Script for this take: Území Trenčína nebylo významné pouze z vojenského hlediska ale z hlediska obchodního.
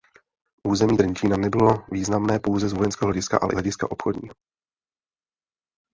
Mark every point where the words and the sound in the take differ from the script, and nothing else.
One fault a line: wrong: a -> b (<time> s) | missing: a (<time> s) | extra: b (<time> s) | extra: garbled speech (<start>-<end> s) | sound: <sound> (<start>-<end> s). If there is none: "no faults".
no faults